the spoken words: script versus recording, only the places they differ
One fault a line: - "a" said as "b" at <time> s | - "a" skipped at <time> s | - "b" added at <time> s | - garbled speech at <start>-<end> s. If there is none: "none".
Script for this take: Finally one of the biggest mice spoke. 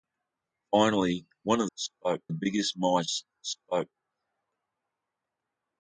- "the" said as "spoke" at 1.7 s